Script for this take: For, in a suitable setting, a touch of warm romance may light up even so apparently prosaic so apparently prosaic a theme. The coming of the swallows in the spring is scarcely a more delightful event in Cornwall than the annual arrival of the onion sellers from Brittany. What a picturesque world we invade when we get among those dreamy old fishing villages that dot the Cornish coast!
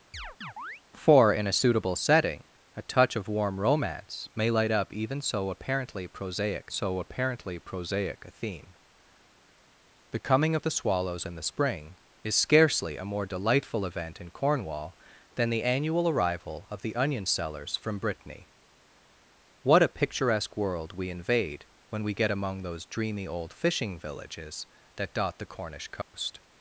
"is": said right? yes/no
yes